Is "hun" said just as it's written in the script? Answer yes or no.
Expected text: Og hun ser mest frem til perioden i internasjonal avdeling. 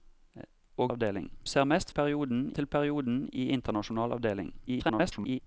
no